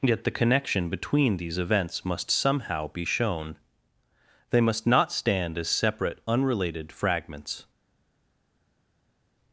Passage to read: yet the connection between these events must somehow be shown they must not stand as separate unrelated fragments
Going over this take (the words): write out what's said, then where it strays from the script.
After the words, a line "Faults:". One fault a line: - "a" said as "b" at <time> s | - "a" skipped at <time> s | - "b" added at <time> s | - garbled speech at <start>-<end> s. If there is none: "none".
yet the connection between these events must somehow be shown they must not stand as separate unrelated fragments
Faults:
none